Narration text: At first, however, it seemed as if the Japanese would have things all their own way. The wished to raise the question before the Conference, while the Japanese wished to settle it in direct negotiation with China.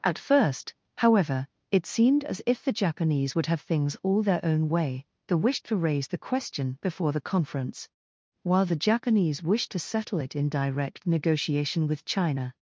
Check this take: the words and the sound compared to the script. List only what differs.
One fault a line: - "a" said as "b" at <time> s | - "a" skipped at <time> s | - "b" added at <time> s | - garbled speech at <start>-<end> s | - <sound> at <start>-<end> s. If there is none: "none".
none